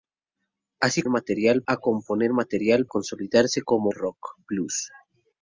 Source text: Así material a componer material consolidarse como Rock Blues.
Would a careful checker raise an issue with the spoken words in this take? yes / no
no